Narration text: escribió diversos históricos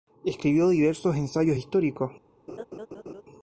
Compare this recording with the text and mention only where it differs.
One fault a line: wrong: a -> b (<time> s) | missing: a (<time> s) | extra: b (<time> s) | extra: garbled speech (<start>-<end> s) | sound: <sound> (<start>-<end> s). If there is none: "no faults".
extra: ensayos (1.1 s)
sound: laugh (2.5-3.2 s)